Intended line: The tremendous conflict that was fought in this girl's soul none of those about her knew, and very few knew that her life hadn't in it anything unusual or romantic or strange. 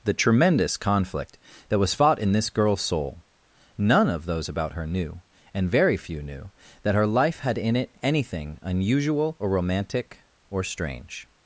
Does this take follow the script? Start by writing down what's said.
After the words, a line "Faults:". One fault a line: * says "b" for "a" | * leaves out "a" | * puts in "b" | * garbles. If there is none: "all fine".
The tremendous conflict that was fought in this girl's soul none of those about her knew, and very few knew that her life had in it anything unusual or romantic or strange.
Faults:
* says "had" for "hadn't"